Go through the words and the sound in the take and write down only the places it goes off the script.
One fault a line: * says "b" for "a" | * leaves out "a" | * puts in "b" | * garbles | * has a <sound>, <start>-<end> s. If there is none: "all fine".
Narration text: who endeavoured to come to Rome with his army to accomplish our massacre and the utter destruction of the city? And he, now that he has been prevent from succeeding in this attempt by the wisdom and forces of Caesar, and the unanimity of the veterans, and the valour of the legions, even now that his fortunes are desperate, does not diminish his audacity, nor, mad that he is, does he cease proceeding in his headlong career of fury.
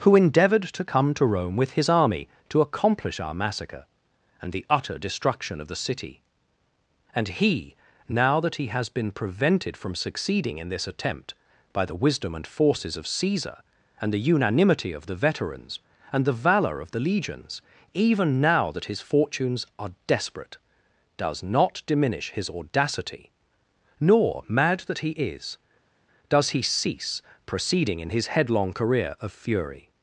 * says "prevented" for "prevent"